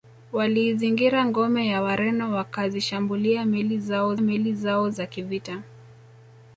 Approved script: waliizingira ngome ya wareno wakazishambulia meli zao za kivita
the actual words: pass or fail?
fail